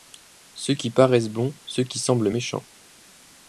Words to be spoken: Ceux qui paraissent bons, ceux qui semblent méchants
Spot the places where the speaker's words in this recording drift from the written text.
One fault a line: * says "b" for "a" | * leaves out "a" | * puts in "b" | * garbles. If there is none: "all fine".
all fine